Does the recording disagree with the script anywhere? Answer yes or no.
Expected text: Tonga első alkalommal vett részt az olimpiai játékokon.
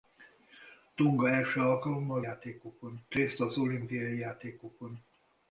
yes